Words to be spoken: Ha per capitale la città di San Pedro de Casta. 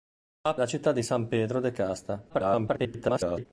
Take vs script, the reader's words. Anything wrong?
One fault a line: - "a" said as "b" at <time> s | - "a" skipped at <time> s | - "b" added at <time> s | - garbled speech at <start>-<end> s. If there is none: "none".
- "per capitale" skipped at 0.6 s
- garbled speech at 2.3-3.5 s